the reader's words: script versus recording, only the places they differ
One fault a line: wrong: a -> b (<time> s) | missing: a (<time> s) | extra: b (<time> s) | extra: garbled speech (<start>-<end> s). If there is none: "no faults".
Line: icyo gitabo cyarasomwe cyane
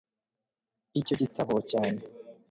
missing: cyarasomwe (1.5 s)